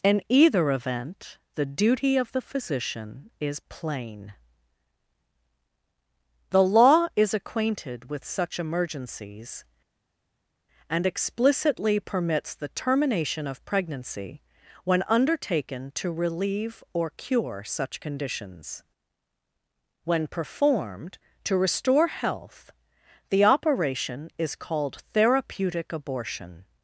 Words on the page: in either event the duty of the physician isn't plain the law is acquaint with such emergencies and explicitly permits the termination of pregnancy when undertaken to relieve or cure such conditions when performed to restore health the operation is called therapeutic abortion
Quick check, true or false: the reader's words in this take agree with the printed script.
false